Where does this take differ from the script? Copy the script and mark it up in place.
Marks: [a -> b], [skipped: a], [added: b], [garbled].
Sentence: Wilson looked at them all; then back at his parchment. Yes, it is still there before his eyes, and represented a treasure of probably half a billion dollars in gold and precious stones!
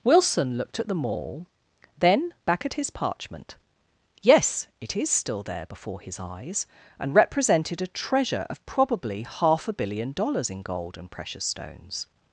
Wilson looked at them all; then back at his parchment. Yes, it is still there before his eyes, and represented a treasure of probably half a billion dollars in gold and precious stones!